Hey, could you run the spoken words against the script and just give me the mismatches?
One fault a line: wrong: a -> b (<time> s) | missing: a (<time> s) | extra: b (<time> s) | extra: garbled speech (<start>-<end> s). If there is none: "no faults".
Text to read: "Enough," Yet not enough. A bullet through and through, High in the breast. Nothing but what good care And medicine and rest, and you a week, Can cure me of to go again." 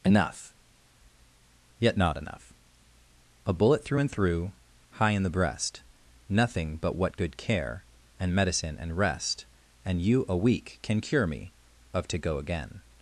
no faults